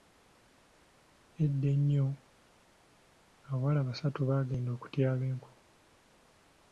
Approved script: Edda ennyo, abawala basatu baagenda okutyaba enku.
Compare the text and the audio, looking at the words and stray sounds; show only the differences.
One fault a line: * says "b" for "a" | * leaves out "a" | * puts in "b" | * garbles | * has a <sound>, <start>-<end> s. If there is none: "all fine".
all fine